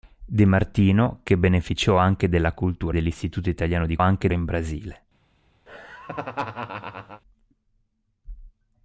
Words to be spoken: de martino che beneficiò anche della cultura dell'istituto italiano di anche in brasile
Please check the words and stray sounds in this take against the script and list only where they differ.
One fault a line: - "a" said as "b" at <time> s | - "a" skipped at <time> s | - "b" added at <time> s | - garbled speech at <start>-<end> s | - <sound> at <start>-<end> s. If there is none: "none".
- laugh at 5.7-7.2 s